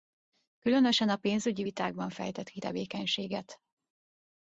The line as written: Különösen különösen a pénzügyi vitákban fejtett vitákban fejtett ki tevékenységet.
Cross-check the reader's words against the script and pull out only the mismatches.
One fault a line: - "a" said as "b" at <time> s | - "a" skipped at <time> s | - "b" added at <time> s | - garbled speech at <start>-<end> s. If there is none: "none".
- "különösen" skipped at 1.1 s
- "vitákban fejtett" skipped at 2.5 s